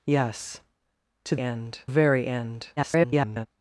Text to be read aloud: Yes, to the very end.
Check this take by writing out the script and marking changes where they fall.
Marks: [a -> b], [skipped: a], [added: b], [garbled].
Yes, to [the -> end] very end. [garbled]